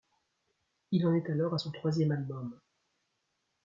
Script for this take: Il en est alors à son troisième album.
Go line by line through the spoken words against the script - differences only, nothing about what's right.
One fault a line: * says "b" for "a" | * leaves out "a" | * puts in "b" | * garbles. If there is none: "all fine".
all fine